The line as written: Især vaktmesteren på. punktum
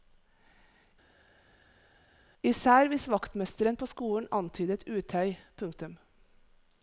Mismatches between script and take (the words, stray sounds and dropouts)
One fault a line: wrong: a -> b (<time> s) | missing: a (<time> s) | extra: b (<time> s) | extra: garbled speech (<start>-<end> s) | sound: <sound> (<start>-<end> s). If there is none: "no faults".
extra: hvis (2.9 s)
extra: skolen antydet utøy (3.8 s)